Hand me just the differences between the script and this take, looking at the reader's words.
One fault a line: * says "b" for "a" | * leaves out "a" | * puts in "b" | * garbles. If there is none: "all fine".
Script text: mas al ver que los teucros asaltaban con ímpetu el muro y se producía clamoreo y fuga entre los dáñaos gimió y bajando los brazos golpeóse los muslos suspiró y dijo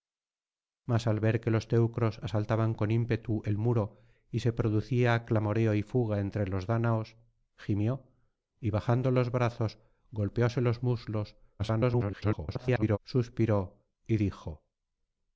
* garbles